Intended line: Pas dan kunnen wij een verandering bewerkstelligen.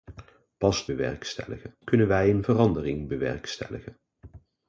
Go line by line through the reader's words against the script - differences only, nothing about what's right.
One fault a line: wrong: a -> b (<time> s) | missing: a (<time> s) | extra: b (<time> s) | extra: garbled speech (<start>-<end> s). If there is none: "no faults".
wrong: dan -> bewerkstelligen (0.8 s)